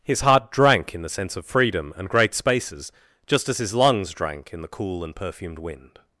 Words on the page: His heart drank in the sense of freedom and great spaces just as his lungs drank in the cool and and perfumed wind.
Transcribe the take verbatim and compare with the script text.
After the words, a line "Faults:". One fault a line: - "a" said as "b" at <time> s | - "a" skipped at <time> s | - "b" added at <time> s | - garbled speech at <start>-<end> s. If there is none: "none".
His heart drank in the sense of freedom and great spaces just as his lungs drank in the cool and perfumed wind.
Faults:
- "and" skipped at 5.2 s